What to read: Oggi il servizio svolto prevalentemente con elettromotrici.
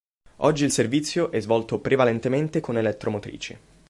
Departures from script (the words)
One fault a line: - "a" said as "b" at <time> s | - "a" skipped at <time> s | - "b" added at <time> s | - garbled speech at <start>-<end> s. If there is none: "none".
- "è" added at 1.3 s